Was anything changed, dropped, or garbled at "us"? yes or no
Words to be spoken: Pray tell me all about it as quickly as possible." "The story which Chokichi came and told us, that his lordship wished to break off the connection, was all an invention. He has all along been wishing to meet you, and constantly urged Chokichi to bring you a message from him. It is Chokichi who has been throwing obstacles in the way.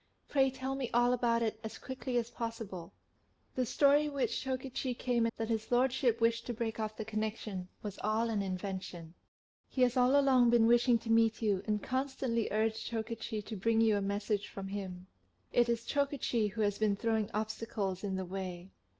yes